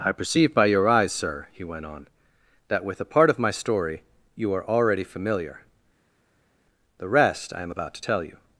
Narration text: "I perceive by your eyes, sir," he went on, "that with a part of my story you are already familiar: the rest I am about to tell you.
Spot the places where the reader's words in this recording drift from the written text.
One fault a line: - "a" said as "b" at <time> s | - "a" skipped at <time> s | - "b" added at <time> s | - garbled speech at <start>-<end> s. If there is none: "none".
none